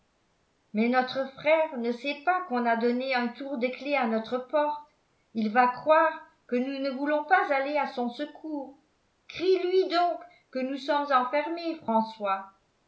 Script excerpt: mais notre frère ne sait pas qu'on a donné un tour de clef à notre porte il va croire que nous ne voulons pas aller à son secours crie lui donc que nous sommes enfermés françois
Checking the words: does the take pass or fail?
pass